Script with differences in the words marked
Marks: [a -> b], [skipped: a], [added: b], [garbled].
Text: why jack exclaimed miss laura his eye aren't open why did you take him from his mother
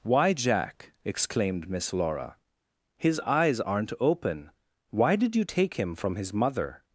why jack exclaimed miss laura his [eye -> eyes] aren't open why did you take him from his mother